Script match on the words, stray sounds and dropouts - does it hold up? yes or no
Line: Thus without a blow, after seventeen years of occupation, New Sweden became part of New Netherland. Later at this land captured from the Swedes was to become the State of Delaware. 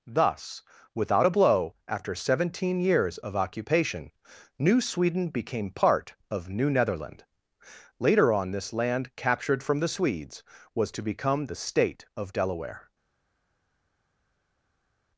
no